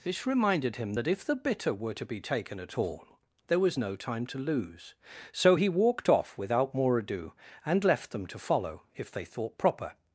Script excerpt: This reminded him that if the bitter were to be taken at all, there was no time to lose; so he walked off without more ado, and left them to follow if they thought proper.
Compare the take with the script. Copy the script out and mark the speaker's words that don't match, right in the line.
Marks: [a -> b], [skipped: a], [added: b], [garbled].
This reminded him that if the bitter were to be taken at all, there was no time to lose; so he walked off without more ado, and left them to follow if they thought proper.